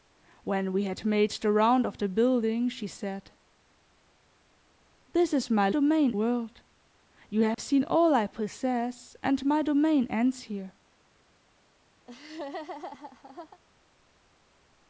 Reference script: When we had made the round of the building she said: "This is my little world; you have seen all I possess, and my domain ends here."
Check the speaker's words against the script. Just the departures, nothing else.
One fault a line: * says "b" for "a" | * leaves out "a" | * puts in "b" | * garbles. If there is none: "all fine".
* says "domain" for "little"